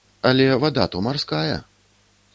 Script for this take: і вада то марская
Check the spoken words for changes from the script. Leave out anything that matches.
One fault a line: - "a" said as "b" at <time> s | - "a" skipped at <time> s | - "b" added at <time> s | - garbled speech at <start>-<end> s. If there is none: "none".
- "і" said as "але" at 0.3 s